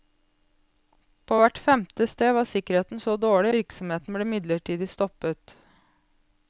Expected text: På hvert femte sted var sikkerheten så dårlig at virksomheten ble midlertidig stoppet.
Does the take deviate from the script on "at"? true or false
true